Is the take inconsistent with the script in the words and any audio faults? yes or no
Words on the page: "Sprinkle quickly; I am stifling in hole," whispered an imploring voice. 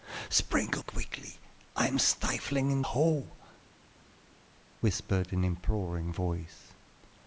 no